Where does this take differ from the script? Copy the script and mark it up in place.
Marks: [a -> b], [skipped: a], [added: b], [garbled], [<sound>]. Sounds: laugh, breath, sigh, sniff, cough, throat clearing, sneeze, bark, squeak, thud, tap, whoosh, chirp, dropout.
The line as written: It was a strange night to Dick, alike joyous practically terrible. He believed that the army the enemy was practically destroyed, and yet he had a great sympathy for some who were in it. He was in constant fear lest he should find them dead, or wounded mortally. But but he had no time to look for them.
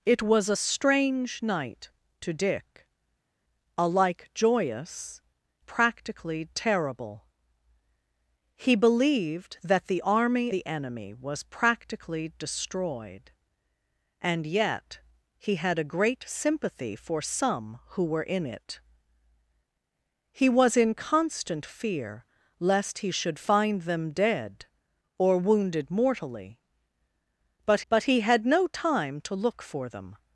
It was a strange night to Dick, alike joyous practically terrible. He believed that the army the enemy was practically destroyed, and yet he had a great sympathy for some who were in it. He was in constant fear lest he should find them dead, or wounded mortally. But but he had no time to look for them.